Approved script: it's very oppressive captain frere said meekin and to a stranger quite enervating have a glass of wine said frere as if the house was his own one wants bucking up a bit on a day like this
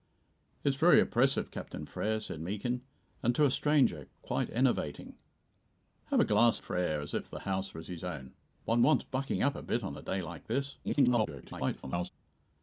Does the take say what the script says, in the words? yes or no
no